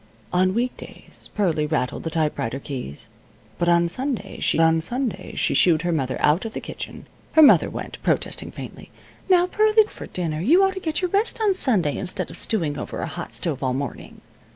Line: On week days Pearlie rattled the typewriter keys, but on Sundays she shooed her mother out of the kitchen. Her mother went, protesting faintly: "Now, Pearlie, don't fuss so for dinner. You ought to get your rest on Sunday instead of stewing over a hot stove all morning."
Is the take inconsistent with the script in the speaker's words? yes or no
yes